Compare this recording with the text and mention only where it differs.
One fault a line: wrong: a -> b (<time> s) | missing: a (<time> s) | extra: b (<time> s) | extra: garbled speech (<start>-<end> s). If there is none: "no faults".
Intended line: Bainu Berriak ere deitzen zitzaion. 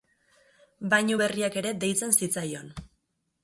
no faults